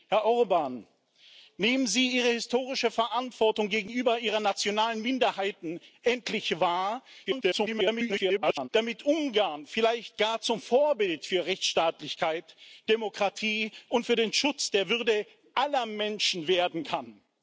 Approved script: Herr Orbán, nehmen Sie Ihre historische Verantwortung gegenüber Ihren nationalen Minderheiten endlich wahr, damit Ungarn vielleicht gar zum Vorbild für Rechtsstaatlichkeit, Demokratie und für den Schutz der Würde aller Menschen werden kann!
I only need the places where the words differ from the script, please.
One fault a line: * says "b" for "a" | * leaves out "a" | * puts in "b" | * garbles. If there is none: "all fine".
* garbles